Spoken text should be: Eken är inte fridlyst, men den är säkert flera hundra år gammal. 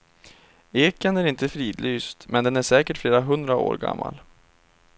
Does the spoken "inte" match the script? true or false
true